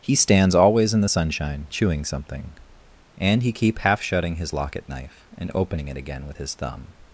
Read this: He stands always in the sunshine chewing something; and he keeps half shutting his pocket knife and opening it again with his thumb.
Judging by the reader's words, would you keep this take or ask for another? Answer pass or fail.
fail